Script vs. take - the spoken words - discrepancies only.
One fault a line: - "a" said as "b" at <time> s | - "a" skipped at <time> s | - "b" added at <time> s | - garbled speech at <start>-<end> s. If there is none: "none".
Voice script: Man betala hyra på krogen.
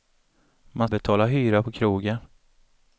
none